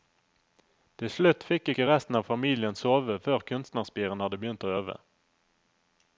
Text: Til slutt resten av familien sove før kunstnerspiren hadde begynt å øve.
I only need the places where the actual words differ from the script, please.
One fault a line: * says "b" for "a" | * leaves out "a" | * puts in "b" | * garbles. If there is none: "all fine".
* puts in "fikk ikke"